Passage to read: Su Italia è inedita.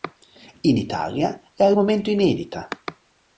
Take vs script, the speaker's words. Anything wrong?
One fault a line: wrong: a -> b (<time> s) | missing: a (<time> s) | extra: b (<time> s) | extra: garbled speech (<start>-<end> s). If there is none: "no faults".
wrong: Su -> In (0.6 s)
extra: al momento (1.6 s)